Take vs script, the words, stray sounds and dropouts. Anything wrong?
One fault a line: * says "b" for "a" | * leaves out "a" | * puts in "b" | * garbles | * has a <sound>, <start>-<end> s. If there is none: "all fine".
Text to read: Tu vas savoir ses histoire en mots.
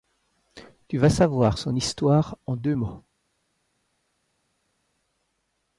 * says "son" for "ses"
* puts in "deux"